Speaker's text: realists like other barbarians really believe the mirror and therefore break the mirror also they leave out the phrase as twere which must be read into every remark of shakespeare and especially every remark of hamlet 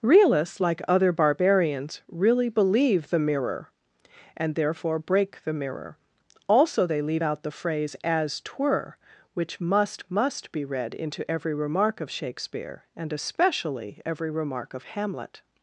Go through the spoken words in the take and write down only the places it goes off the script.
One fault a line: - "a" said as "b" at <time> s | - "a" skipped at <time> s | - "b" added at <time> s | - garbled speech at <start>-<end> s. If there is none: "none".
- "must" added at 10.1 s